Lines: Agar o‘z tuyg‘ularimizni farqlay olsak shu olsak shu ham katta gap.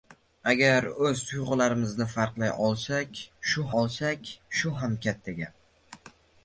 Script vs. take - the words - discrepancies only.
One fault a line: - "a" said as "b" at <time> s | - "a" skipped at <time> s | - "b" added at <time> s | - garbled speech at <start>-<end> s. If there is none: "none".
none